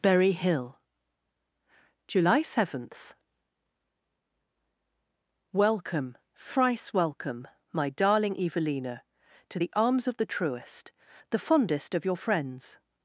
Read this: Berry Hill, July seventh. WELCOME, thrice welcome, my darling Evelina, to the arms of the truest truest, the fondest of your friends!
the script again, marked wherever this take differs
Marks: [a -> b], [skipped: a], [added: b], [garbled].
Berry Hill, July seventh. WELCOME, thrice welcome, my darling Evelina, to the arms of the truest [skipped: truest,] the fondest of your friends!